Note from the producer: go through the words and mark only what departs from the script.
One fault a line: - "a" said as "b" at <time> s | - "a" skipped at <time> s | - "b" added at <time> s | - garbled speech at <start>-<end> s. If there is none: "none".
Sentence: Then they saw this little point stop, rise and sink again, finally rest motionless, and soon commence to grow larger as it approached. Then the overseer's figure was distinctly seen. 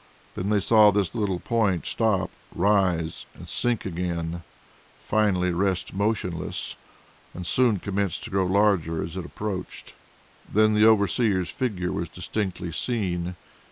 none